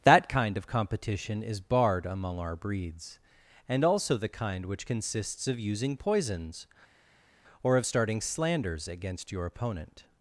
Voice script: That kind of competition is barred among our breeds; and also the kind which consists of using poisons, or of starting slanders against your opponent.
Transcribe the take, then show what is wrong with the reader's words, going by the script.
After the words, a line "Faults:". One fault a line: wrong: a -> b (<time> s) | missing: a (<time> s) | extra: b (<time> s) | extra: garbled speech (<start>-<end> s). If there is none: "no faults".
That kind of competition is barred among our breeds; and also the kind which consists of using poisons, or of starting slanders against your opponent.
Faults:
no faults